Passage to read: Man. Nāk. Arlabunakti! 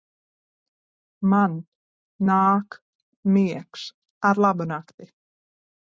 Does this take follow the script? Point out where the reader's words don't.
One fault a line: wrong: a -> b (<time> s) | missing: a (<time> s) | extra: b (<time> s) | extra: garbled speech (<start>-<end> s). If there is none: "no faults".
extra: Miegs (3.4 s)